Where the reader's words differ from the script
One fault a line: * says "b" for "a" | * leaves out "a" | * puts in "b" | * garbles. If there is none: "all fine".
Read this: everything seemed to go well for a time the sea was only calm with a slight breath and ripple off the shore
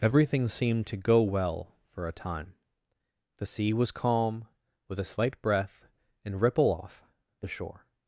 * leaves out "only"